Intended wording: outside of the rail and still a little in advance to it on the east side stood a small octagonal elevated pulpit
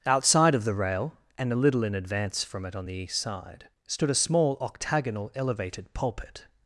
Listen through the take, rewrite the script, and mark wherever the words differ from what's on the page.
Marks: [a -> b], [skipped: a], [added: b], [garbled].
outside of the rail and [skipped: still] a little in advance [to -> from] it on the east side stood a small octagonal elevated pulpit